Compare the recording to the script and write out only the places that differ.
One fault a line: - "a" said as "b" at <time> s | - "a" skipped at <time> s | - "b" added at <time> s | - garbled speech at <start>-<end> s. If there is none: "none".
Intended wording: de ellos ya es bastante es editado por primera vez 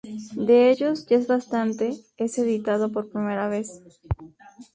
none